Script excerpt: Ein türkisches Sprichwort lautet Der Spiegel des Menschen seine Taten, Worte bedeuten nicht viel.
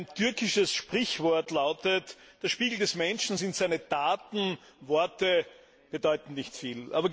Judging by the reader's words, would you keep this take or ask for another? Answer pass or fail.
fail